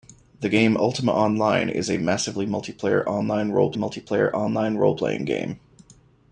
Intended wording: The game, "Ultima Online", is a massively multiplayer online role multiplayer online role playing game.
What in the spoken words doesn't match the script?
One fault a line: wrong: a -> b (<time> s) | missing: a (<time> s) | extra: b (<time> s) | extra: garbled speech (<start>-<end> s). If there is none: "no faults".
no faults